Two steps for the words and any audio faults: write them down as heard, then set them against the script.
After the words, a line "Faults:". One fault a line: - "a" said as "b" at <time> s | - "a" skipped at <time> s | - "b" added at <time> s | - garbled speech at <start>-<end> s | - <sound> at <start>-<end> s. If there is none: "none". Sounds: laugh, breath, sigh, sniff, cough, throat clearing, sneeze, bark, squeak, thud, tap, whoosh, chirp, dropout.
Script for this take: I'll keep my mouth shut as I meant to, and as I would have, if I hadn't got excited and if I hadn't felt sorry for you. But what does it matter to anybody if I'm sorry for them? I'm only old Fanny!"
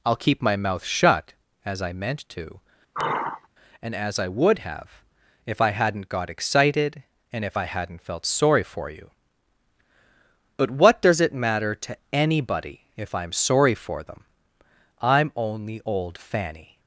I'll keep my mouth shut as I meant to, and as I would have, if I hadn't got excited and if I hadn't felt sorry for you. But what does it matter to anybody if I'm sorry for them? I'm only old Fanny!"
Faults:
- sigh at 2.9-3.5 s